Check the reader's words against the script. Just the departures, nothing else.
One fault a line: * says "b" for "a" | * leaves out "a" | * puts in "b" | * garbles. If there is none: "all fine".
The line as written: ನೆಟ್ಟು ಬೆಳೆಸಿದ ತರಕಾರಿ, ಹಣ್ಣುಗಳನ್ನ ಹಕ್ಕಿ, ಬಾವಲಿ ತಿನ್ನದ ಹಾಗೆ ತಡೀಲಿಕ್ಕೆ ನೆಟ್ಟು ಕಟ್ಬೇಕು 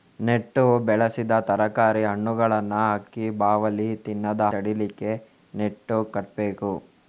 * leaves out "ಹಾಗೆ"